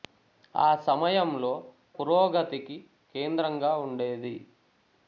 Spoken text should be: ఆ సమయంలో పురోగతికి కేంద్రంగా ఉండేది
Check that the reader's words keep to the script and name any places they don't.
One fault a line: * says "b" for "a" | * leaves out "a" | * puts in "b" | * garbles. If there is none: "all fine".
all fine